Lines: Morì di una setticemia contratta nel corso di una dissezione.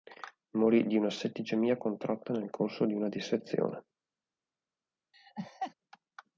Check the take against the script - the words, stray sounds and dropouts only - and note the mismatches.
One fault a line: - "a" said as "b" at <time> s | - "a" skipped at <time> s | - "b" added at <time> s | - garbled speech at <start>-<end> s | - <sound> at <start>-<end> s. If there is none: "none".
- laugh at 5.1-5.7 s